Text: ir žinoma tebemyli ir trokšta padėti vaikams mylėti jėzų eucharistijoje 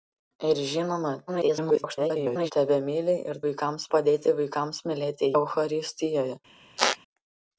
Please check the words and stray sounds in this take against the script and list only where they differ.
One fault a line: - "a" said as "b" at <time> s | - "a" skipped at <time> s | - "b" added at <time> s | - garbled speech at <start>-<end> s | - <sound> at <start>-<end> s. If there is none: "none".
- garbled speech at 1.3-2.5 s
- "trokšta" said as "vaikams" at 3.5 s
- "jėzų" skipped at 5.3 s
- squeak at 6.8-7.0 s